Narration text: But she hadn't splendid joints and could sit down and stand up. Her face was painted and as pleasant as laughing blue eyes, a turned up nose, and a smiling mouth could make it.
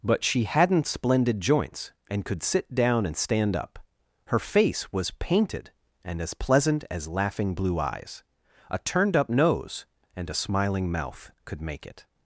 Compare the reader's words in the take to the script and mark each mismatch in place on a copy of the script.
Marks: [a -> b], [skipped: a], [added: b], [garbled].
But she hadn't splendid joints and could sit down and stand up. Her face was painted and as pleasant as laughing blue eyes, a turned up nose, and a smiling mouth could make it.